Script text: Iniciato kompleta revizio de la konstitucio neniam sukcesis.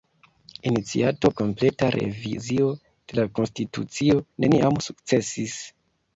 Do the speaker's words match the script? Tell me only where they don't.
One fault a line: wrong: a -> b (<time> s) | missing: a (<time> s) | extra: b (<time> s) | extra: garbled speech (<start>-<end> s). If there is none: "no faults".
no faults